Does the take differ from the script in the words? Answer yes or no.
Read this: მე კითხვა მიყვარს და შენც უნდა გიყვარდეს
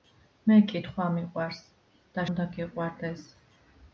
yes